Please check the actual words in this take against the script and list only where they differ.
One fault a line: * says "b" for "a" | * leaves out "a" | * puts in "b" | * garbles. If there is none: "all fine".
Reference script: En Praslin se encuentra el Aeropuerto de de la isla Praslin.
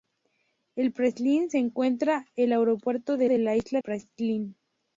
all fine